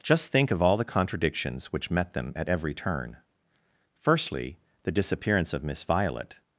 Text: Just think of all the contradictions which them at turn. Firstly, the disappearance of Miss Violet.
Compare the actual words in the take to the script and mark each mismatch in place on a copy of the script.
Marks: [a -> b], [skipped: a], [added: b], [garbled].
Just think of all the contradictions which [added: met] them at [added: every] turn. Firstly, the disappearance of Miss Violet.